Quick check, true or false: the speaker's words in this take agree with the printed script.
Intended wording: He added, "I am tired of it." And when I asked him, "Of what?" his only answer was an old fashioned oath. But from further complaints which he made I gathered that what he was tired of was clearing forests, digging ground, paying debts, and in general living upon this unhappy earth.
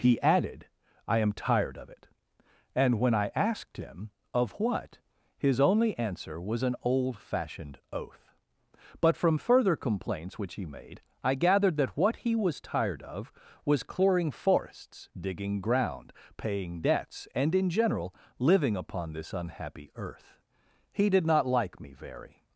false